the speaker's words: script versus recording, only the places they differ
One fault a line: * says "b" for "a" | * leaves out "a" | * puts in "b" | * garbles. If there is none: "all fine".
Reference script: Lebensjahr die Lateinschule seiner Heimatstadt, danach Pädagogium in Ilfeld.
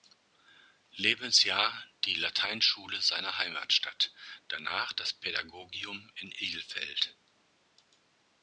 * puts in "das"